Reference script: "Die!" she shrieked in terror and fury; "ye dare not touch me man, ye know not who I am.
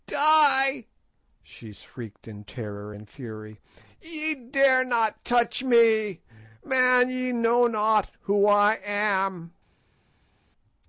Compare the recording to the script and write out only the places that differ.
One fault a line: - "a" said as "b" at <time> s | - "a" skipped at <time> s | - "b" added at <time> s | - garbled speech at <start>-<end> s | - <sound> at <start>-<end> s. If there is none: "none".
none